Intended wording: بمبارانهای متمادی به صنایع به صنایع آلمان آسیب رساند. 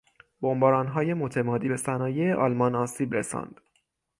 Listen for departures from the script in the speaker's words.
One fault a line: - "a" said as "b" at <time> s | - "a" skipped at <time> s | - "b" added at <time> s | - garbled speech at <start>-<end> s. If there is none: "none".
- "به صنایع" skipped at 2.3 s